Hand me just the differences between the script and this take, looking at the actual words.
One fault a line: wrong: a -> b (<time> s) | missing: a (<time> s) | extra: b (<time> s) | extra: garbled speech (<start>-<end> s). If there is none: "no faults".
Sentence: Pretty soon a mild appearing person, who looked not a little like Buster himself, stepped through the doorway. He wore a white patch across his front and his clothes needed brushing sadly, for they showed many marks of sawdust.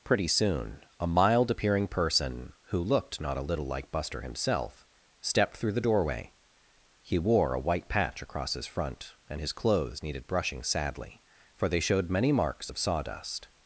no faults